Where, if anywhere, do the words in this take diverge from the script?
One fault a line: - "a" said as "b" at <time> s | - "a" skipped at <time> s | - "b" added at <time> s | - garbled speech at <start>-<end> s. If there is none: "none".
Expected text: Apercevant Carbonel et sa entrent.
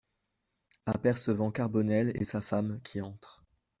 - "femme qui" added at 2.4 s